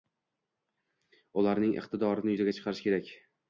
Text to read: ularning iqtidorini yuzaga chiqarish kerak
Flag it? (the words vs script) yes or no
no